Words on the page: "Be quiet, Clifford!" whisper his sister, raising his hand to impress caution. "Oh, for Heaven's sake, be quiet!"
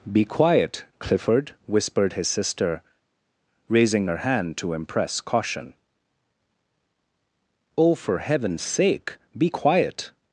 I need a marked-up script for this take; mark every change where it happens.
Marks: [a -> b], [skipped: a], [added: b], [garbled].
"Be quiet, Clifford!" [whisper -> whispered] his sister, raising [his -> her] hand to impress caution. "Oh, for Heaven's sake, be quiet!"